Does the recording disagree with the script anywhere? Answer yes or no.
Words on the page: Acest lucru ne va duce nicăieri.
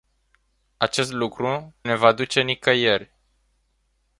no